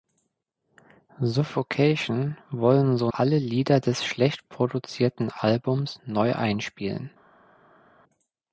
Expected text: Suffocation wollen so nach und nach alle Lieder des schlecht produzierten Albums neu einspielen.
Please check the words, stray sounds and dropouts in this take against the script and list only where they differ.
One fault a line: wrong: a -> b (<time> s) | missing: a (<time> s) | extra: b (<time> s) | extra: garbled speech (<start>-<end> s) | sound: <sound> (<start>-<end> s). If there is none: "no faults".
missing: nach und nach (3.1 s)